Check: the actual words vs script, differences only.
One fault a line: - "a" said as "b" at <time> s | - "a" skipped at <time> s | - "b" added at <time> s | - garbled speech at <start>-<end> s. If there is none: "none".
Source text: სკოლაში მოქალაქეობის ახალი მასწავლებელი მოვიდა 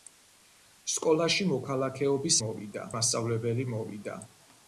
- "ახალი" said as "მოვიდა" at 2.4 s